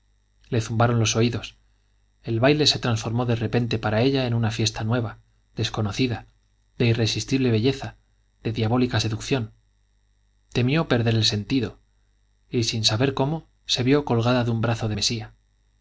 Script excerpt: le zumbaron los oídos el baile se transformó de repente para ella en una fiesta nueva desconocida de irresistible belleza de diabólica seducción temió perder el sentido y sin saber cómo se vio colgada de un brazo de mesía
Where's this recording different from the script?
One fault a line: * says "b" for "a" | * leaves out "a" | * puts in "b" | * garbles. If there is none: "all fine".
all fine